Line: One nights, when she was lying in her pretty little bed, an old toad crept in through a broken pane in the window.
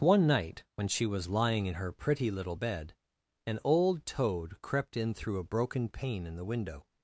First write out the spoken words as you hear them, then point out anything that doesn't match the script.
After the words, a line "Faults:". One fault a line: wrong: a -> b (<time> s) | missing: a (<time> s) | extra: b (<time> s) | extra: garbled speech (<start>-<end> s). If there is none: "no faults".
One night, when she was lying in her pretty little bed, an old toad crept in through a broken pane in the window.
Faults:
wrong: nights -> night (0.2 s)